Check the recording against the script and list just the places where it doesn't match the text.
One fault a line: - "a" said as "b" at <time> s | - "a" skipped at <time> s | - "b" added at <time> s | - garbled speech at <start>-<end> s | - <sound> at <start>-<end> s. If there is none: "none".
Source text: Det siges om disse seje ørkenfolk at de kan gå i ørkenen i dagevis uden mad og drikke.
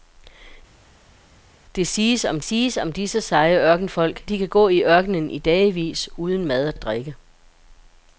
- "siges om" added at 2.4 s
- "at" skipped at 4.2 s
- "og" added at 6.7 s